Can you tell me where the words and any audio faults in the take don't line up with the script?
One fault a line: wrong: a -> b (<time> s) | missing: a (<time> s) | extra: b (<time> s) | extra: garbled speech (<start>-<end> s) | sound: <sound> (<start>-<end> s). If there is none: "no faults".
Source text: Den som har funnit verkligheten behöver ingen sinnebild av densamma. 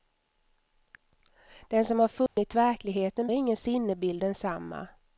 sound: dropout (2.3-2.4 s)
missing: behöver (3.3 s)
missing: av (4.2 s)